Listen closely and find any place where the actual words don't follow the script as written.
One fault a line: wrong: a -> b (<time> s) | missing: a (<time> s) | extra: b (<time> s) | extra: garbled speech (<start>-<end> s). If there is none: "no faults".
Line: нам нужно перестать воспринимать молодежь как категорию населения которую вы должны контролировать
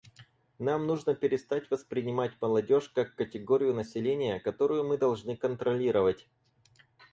wrong: вы -> мы (4.8 s)